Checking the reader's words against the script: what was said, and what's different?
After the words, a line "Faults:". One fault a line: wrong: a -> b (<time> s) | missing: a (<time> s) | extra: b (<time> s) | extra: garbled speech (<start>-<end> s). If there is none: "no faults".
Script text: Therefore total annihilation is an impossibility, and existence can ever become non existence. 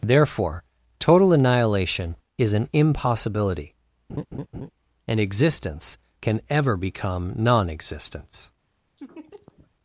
Therefore total annihilation is an impossibility, and existence can ever become non existence.
Faults:
no faults